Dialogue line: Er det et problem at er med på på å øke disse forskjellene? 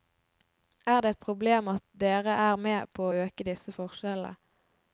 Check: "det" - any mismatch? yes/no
no